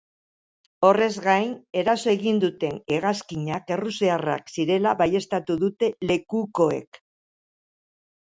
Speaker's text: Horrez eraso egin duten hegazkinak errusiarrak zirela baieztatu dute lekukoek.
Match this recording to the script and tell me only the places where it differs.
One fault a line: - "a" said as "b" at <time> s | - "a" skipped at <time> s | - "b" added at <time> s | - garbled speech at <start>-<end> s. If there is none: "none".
- "gain" added at 1.2 s